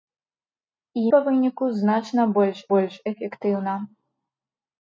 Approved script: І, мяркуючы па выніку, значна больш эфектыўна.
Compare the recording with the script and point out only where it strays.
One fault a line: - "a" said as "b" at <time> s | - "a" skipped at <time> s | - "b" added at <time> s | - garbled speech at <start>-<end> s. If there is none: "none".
- "мяркуючы" skipped at 1.0 s
- "больш" added at 2.7 s